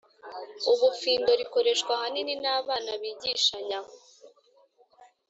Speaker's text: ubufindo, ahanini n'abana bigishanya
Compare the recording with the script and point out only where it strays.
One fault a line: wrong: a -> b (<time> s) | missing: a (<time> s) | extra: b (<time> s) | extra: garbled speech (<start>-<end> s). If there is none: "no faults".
extra: rikoreshwa (1.4 s)